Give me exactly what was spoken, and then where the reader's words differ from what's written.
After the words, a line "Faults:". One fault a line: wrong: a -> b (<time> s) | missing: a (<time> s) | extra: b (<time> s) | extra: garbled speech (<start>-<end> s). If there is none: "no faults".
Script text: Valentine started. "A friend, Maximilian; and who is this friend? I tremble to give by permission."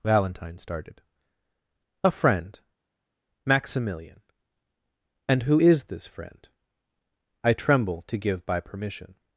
Valentine started. "A friend, Maximilian; and who is this friend? I tremble to give by permission."
Faults:
no faults